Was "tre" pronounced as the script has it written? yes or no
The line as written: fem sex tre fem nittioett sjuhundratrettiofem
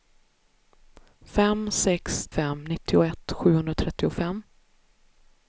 no